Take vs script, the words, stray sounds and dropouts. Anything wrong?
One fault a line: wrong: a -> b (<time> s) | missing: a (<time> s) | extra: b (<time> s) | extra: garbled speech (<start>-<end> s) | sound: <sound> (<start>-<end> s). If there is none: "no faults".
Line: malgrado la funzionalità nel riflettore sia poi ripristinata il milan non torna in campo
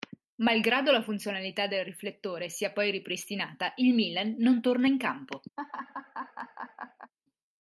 wrong: nel -> del (1.7 s)
sound: laugh (5.6-7.1 s)